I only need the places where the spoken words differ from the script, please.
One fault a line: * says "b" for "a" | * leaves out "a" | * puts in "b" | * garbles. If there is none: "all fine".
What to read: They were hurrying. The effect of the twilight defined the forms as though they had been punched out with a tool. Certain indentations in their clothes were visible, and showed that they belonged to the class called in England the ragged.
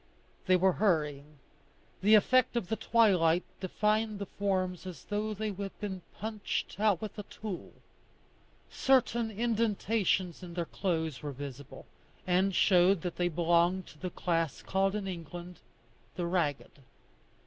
all fine